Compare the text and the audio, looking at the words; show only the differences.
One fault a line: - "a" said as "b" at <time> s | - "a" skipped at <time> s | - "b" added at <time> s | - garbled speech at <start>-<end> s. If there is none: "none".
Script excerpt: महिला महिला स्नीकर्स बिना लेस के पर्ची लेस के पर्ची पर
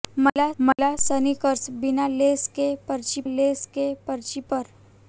none